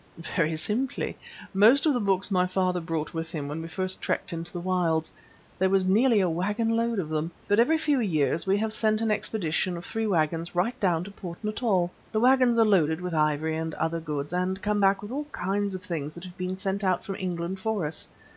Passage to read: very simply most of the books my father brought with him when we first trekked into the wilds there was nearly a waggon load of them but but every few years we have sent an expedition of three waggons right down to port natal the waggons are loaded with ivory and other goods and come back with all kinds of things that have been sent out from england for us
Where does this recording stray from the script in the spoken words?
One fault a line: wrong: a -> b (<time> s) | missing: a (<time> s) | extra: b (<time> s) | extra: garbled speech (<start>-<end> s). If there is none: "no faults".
missing: but (7.6 s)